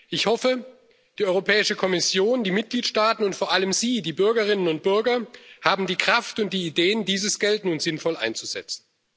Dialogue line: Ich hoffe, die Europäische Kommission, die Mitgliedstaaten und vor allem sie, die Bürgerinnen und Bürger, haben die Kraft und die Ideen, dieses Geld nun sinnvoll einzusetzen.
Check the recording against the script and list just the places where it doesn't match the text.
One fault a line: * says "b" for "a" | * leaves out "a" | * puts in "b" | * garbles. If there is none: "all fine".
all fine